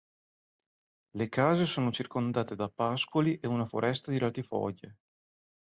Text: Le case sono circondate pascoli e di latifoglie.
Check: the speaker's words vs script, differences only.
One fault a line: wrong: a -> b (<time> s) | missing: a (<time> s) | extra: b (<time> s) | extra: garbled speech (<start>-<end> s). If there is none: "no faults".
extra: da (2.5 s)
extra: una foresta (3.5 s)